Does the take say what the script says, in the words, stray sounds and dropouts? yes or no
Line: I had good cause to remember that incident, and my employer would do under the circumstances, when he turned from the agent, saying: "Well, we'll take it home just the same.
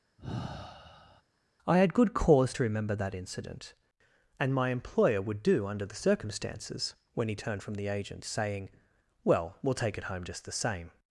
no